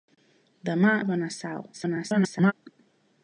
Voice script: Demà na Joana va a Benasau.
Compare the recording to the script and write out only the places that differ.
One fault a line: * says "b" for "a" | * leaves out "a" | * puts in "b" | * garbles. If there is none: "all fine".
* leaves out "na Joana va"
* garbles